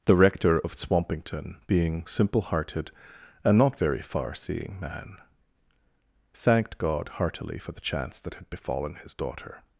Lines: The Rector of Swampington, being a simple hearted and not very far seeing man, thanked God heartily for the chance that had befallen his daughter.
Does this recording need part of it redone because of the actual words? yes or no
yes